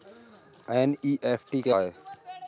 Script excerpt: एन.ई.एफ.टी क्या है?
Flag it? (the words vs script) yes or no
no